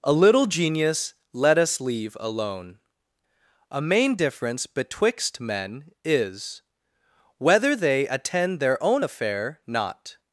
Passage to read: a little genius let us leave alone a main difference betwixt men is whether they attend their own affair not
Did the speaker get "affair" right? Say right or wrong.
right